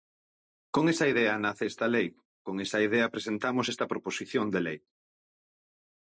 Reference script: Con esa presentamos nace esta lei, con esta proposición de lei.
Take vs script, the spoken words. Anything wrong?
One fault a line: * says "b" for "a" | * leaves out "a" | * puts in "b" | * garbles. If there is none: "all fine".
* says "idea" for "presentamos"
* puts in "esa idea presentamos"